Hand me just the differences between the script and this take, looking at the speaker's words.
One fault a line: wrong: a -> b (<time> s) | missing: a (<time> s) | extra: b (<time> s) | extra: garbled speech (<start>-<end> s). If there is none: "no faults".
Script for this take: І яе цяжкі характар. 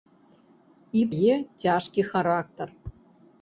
no faults